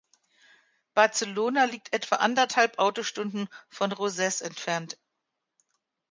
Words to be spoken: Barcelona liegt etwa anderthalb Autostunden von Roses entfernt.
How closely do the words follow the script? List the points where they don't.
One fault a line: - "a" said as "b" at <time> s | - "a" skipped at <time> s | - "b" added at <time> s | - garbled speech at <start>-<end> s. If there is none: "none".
none